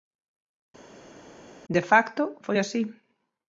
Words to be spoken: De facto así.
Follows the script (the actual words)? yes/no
no